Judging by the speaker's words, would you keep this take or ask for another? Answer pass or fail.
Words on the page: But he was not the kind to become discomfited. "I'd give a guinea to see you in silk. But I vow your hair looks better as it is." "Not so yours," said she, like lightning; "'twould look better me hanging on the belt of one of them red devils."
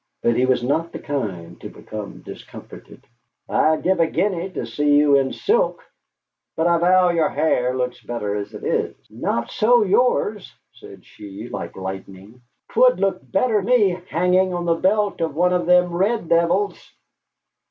pass